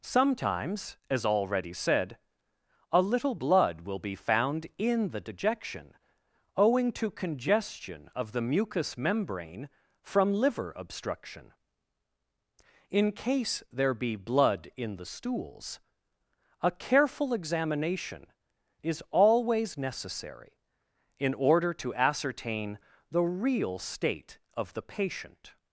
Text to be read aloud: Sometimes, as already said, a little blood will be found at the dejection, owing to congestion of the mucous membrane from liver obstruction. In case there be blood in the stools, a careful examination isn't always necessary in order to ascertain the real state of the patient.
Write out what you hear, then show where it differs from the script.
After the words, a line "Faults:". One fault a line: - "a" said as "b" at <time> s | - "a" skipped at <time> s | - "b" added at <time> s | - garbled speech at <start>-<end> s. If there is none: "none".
Sometimes, as already said, a little blood will be found in the dejection, owing to congestion of the mucous membrane from liver obstruction. In case there be blood in the stools, a careful examination is always necessary in order to ascertain the real state of the patient.
Faults:
- "at" said as "in" at 4.8 s
- "isn't" said as "is" at 18.8 s